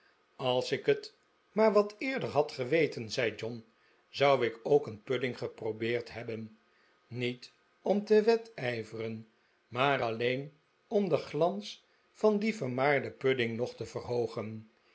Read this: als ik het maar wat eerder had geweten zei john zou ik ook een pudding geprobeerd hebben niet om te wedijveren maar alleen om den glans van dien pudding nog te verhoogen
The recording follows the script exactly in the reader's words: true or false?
false